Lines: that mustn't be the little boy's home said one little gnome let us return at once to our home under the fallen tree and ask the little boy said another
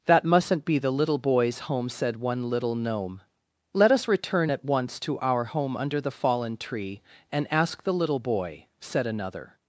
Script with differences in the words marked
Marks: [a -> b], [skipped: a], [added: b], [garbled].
that mustn't be the little boy's home said one little gnome let us return at once to our home under the fallen tree and ask the little boy said another